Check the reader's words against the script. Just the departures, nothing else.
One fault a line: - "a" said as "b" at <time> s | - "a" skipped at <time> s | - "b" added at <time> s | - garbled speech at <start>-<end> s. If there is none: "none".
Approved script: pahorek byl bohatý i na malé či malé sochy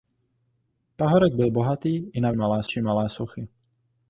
none